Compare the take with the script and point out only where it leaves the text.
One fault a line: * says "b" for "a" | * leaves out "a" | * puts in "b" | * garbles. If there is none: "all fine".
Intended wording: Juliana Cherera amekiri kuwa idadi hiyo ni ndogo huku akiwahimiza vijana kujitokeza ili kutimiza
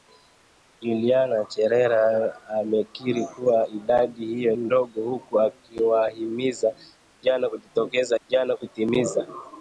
* leaves out "ni"
* says "vijana" for "ili"